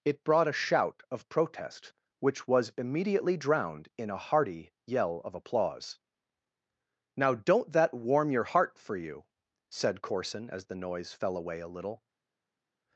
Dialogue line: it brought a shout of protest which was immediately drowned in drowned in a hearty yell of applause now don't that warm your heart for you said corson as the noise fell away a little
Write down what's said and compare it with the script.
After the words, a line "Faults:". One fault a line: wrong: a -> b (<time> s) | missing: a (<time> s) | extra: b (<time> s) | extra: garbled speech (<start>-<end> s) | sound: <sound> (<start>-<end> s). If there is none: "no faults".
it brought a shout of protest which was immediately drowned in a hearty yell of applause now don't that warm your heart for you said corson as the noise fell away a little
Faults:
missing: drowned in (4.1 s)